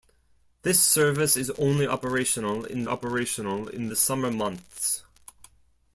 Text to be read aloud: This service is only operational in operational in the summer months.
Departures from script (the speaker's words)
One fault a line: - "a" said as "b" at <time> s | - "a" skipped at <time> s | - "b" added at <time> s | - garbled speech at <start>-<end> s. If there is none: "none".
none